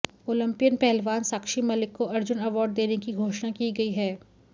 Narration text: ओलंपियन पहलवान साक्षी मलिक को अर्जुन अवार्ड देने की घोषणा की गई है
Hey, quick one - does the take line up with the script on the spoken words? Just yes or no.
yes